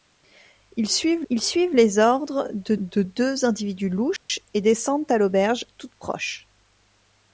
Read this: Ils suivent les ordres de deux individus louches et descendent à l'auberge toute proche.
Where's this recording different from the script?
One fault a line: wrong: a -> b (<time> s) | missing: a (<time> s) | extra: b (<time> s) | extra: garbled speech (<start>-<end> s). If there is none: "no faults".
extra: ils suivent (1.3 s)
extra: de (2.8 s)